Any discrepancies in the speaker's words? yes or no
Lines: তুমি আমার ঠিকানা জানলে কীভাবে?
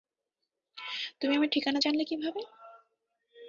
no